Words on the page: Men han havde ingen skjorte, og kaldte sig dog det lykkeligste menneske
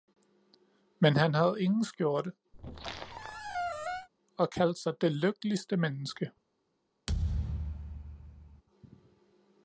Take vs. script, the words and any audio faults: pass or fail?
fail